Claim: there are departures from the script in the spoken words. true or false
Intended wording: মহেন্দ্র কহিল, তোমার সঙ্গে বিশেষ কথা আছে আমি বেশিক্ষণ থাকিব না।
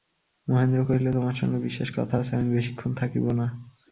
false